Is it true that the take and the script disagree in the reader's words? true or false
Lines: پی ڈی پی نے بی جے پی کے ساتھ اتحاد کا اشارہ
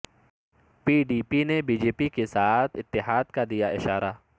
true